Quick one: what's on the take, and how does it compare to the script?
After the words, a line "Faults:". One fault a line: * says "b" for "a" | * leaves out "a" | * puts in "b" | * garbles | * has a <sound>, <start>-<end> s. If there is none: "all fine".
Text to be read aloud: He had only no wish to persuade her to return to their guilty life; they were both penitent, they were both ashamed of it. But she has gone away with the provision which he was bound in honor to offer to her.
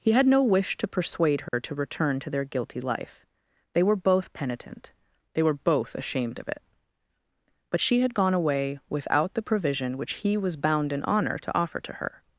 He had no wish to persuade her to return to their guilty life; they were both penitent, they were both ashamed of it. But she had gone away without the provision which he was bound in honor to offer to her.
Faults:
* leaves out "only"
* has a dropout, 1.5-1.5 s
* says "had" for "has"
* says "without" for "with"